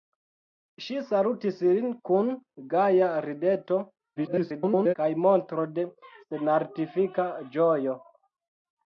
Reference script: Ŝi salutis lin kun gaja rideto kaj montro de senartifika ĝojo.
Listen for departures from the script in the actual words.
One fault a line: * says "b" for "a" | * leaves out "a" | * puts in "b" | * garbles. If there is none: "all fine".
* garbles